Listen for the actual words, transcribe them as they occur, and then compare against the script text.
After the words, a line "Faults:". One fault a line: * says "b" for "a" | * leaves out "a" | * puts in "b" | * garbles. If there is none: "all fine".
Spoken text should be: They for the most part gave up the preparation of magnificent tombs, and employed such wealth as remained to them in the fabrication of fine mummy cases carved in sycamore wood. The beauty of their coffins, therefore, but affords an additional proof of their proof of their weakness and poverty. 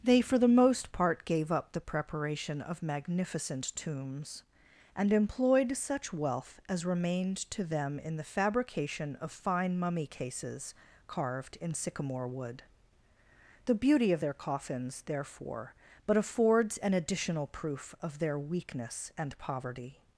They for the most part gave up the preparation of magnificent tombs, and employed such wealth as remained to them in the fabrication of fine mummy cases carved in sycamore wood. The beauty of their coffins, therefore, but affords an additional proof of their weakness and poverty.
Faults:
* leaves out "proof of their"